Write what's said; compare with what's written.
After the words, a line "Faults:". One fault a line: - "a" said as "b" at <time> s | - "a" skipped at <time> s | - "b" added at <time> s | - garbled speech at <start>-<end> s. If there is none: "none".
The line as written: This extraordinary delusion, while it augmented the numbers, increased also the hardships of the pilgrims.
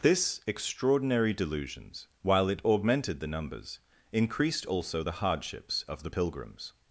This extraordinary delusions, while it augmented the numbers, increased also the hardships of the pilgrims.
Faults:
- "delusion" said as "delusions" at 1.3 s